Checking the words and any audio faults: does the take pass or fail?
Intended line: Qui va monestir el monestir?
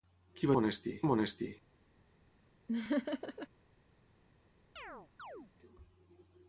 fail